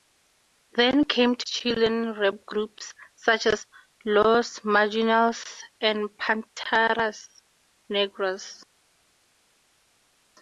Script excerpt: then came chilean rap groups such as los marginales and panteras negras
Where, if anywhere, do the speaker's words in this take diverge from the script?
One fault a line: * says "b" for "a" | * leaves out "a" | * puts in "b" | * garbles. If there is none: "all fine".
all fine